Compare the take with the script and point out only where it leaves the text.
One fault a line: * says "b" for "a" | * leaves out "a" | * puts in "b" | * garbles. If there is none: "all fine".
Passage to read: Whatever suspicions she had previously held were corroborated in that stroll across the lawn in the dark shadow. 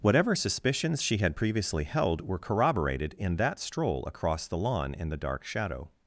all fine